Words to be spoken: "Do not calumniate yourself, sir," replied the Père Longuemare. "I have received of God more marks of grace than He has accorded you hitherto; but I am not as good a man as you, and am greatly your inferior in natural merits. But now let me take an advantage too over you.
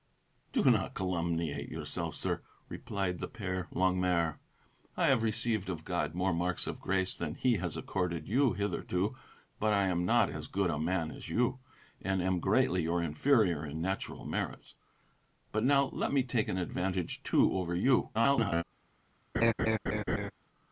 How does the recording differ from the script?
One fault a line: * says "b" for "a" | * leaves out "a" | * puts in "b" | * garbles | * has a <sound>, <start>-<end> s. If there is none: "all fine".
* garbles
* has a laugh, 19.3-20.3 s